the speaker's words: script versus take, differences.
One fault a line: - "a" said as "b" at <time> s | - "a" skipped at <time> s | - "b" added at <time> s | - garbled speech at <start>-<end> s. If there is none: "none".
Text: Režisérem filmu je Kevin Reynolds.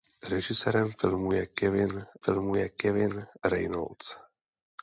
- "filmu je Kevin" added at 2.2 s